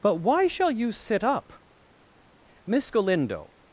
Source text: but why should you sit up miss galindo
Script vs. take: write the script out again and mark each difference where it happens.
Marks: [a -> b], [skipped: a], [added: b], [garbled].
but why [should -> shall] you sit up miss galindo